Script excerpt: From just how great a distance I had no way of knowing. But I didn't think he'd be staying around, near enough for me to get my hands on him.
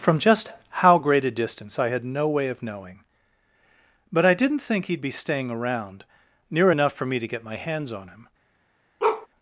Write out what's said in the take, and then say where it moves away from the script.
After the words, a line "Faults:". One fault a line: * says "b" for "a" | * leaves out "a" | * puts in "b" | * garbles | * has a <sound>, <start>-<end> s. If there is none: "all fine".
From just how great a distance I had no way of knowing. But I didn't think he'd be staying around, near enough for me to get my hands on him.
Faults:
* has a bark, 9.0-9.3 s